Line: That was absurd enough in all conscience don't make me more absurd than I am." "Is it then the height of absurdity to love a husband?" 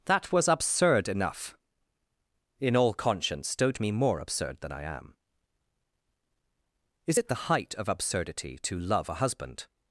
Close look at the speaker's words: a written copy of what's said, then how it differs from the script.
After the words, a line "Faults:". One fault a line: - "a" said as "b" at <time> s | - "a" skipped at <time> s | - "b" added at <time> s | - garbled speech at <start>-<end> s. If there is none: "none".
That was absurd enough in all conscience don't me more absurd than I am." "Is it the height of absurdity to love a husband?"
Faults:
- "make" skipped at 3.8 s
- "then" skipped at 7.3 s